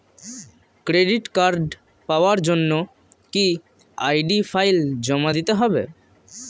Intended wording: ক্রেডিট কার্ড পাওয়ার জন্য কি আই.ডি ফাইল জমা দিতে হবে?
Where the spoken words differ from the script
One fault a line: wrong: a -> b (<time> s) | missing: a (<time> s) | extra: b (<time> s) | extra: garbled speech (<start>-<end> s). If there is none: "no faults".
no faults